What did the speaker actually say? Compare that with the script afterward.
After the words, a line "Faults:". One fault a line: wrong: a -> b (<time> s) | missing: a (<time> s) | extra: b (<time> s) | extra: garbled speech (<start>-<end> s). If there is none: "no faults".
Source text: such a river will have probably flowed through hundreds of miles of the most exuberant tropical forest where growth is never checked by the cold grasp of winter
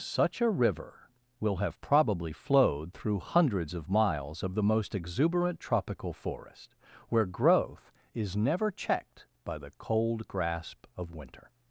such a river will have probably flowed through hundreds of miles of the most exuberant tropical forest where growth is never checked by the cold grasp of winter
Faults:
no faults